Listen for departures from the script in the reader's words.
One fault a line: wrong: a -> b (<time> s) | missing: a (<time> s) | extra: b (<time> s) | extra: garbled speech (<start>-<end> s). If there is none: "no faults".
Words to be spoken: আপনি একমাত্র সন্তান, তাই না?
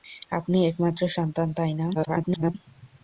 extra: garbled speech (1.9-2.5 s)